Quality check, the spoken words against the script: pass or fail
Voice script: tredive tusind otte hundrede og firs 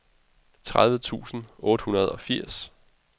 pass